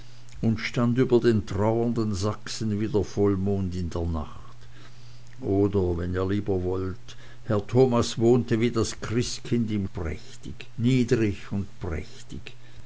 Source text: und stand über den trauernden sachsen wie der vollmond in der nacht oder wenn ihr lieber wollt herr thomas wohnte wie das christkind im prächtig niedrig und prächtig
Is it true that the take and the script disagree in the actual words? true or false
false